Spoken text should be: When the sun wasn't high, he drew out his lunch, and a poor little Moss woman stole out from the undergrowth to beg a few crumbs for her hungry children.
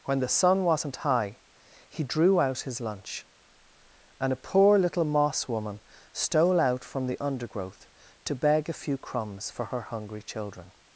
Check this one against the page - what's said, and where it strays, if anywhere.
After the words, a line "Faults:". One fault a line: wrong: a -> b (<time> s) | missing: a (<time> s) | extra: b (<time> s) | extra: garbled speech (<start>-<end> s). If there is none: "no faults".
When the sun wasn't high, he drew out his lunch, and a poor little Moss woman stole out from the undergrowth to beg a few crumbs for her hungry children.
Faults:
no faults